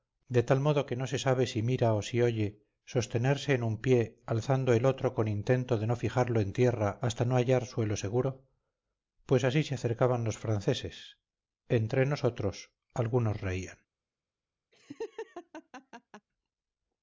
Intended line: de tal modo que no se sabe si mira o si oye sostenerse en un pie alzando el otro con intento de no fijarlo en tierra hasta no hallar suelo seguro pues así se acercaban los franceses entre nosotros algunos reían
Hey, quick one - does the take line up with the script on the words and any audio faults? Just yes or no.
no